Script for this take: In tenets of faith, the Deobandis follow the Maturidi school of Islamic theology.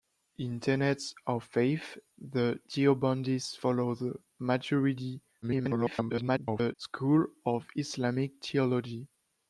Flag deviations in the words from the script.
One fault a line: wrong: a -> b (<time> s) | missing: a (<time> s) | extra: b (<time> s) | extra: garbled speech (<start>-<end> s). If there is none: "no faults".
extra: garbled speech (5.4-6.7 s)